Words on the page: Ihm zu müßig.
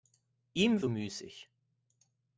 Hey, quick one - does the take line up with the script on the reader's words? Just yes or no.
yes